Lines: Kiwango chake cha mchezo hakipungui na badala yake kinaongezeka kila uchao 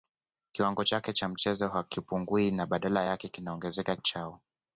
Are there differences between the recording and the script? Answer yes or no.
yes